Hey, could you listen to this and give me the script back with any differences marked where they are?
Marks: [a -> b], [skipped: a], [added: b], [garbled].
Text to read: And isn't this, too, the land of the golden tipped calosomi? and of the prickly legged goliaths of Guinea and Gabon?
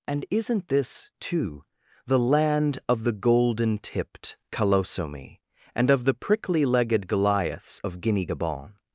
And isn't this, too, the land of the golden tipped calosomi? and of the prickly legged goliaths of Guinea [skipped: and] Gabon?